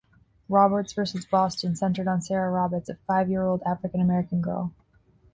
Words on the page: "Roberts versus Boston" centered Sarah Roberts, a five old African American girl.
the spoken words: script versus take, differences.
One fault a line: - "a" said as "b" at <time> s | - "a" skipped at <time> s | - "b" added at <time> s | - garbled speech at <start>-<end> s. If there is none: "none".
- "on" added at 2.1 s
- "year" added at 3.3 s